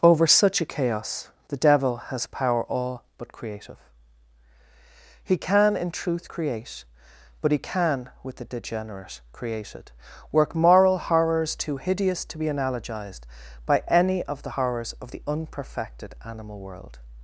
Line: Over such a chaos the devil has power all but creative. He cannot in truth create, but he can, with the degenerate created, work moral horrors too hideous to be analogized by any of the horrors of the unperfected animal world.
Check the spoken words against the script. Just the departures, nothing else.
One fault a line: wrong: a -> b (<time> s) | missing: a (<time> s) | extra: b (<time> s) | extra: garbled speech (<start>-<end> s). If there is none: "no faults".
wrong: cannot -> can (5.4 s)